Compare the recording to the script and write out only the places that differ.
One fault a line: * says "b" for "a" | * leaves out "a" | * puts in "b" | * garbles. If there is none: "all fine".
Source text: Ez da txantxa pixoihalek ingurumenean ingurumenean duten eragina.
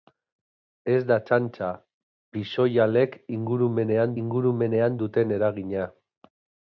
all fine